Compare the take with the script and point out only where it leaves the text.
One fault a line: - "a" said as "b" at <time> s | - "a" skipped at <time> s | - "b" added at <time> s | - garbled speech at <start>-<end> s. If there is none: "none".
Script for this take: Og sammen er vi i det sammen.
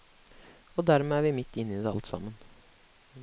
- "sammen" said as "dermed" at 0.9 s
- "midt inne" added at 1.4 s
- "alt" added at 1.9 s